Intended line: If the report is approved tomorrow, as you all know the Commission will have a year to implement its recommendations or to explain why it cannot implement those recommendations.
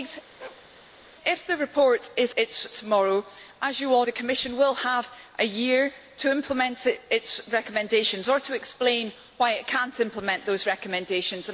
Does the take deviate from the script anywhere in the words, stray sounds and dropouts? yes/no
yes